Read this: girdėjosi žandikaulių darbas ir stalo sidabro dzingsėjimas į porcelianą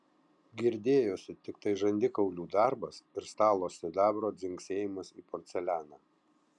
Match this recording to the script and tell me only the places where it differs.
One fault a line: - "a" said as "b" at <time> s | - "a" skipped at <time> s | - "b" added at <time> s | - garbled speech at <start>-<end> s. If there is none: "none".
- "tiktai" added at 1.5 s